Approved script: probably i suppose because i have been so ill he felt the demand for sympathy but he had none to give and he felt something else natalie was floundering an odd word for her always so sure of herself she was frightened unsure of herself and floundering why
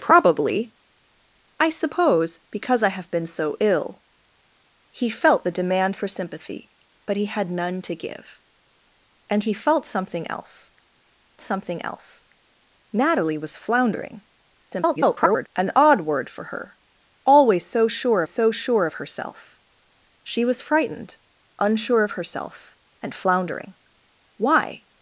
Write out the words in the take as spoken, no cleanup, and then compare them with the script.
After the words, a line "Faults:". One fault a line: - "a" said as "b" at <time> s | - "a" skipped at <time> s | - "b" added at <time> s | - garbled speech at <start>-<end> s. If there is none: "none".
probably i suppose because i have been so ill he felt the demand for sympathy but he had none to give and he felt something else something else natalie was floundering [garbled] an odd word for her always so sure so sure of herself she was frightened unsure of herself and floundering why
Faults:
- "something else" added at 11.4 s
- garbled speech at 14.7-15.5 s
- "so sure" added at 18.3 s